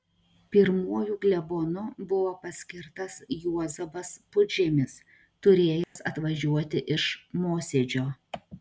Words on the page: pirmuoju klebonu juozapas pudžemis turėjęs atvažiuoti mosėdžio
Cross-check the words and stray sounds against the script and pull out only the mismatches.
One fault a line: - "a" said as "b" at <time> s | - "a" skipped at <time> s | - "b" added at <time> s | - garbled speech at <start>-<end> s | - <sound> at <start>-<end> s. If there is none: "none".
- "buvo paskirtas" added at 2.1 s
- dropout at 5.8-6.0 s
- "iš" added at 7.0 s